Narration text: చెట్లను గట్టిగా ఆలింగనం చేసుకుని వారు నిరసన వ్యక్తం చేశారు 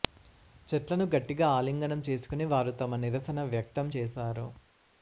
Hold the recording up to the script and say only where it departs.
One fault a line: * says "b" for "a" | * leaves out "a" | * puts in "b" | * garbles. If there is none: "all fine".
* puts in "తమ"